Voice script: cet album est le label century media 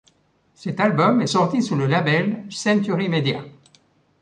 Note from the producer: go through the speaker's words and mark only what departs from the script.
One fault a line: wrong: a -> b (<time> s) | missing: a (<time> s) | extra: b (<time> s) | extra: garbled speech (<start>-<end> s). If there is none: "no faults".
extra: sorti sous (1.2 s)